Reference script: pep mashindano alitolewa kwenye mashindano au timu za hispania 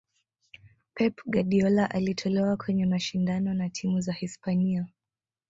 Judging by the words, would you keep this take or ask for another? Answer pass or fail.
fail